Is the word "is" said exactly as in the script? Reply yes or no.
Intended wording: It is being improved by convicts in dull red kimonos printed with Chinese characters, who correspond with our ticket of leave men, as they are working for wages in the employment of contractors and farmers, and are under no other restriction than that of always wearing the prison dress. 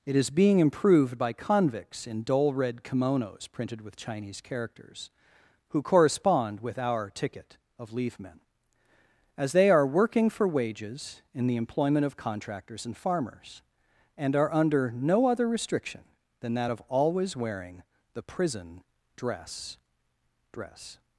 yes